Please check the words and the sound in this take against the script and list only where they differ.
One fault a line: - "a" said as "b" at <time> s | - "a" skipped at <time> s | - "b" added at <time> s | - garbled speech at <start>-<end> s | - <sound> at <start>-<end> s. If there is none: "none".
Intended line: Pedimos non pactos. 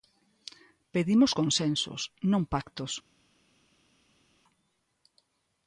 - "consensos" added at 1.4 s